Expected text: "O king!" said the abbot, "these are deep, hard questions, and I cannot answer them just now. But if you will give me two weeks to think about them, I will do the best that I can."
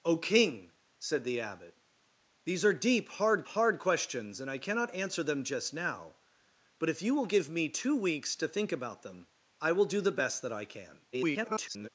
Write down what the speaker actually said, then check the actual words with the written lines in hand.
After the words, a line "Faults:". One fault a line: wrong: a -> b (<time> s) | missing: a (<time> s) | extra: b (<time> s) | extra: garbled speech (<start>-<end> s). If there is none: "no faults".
"O king!" said the abbot, "these are deep, hard hard questions, and I cannot answer them just now. But if you will give me two weeks to think about them, I will do the best that I can." [garbled]
Faults:
extra: hard (3.5 s)
extra: garbled speech (11.1-11.9 s)